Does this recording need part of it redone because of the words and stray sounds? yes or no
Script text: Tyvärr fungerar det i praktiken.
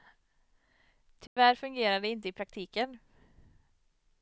yes